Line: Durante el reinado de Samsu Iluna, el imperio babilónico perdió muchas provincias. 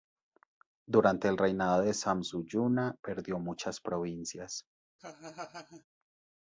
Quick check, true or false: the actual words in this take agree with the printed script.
false